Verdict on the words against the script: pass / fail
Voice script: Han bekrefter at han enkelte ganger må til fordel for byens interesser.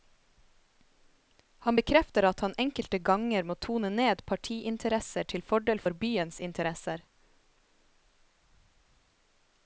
fail